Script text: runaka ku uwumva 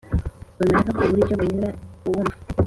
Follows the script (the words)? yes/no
no